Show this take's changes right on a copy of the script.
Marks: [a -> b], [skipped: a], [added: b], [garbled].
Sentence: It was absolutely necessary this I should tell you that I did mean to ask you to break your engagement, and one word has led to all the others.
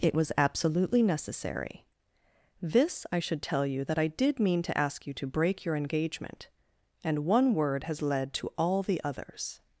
It was absolutely necessary this I should tell you that I did mean to ask you to break your engagement, and one word has led to all the others.